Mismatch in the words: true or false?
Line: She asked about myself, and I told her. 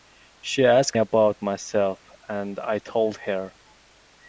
false